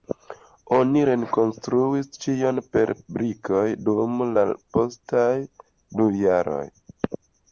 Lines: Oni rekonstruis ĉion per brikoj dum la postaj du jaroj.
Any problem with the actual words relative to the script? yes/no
no